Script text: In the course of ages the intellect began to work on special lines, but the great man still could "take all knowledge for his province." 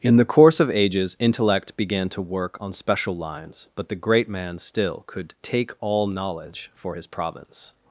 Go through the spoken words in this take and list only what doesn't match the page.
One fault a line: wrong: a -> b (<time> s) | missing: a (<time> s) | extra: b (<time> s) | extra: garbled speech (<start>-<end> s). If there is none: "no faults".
missing: the (1.1 s)